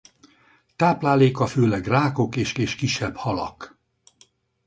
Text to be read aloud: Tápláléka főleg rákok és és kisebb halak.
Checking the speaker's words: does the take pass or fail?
pass